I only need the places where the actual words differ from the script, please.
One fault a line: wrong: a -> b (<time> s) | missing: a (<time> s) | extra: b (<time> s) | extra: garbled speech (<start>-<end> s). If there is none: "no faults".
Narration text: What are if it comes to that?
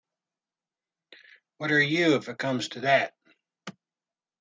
extra: you (1.8 s)